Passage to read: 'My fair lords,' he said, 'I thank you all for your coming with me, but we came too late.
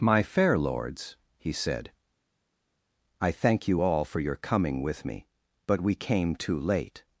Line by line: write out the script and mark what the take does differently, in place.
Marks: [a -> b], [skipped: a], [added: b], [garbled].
'My fair lords,' he said, 'I thank you all for your coming with me, but we came too late.